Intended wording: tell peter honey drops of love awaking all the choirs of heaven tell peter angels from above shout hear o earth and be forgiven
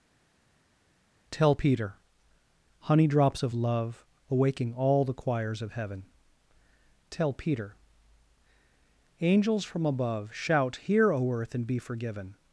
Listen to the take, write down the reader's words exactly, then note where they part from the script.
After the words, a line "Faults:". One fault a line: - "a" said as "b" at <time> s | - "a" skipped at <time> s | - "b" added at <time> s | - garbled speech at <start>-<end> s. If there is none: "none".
tell peter honey drops of love awaking all the choirs of heaven tell peter angels from above shout hear o earth and be forgiven
Faults:
none